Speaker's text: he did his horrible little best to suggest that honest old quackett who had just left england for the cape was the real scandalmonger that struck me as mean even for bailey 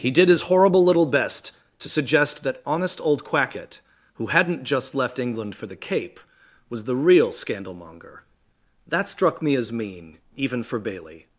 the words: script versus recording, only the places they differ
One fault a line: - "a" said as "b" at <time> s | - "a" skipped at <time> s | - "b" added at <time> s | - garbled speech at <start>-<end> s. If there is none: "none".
- "had" said as "hadn't" at 4.2 s